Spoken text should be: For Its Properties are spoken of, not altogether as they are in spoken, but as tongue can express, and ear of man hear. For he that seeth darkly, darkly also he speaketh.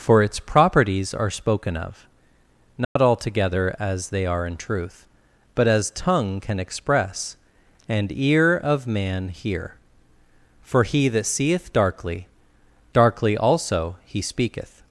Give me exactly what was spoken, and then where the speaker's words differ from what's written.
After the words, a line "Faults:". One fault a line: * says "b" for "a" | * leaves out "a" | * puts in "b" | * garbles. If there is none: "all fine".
For Its Properties are spoken of, not altogether as they are in truth, but as tongue can express, and ear of man hear. For he that seeth darkly, darkly also he speaketh.
Faults:
* says "truth" for "spoken"